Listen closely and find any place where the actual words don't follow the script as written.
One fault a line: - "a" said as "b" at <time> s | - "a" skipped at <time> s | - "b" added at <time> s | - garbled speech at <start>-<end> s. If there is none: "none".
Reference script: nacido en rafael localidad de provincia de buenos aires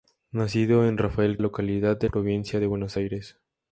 none